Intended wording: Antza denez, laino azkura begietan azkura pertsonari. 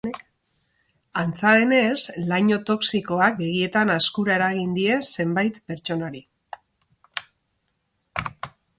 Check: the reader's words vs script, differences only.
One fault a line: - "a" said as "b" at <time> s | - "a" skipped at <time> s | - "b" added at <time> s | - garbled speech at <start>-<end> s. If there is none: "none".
- "azkura" said as "toxikoak" at 2.7 s
- "eragin die zenbait" added at 4.4 s